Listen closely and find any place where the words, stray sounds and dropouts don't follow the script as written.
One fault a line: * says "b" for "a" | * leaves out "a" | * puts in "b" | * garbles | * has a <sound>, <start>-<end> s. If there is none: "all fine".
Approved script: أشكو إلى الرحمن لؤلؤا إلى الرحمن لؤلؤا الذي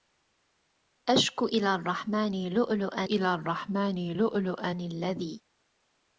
all fine